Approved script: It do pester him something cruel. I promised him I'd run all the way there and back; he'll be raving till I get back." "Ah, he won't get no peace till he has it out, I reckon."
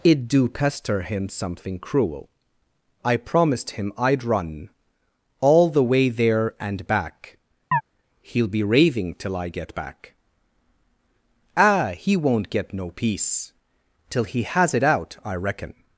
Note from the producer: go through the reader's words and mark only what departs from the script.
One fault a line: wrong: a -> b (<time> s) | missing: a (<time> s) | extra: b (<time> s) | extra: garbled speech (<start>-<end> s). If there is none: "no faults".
no faults